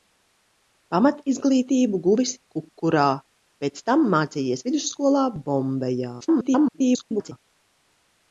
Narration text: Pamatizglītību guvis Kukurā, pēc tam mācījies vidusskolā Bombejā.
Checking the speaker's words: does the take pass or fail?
fail